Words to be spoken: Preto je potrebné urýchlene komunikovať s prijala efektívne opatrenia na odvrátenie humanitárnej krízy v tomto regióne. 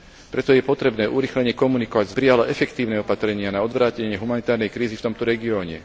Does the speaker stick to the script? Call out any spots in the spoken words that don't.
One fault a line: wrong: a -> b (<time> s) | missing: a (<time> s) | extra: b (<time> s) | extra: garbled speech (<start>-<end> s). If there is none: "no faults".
no faults